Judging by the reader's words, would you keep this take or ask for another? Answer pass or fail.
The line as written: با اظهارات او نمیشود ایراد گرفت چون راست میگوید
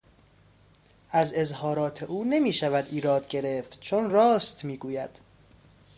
fail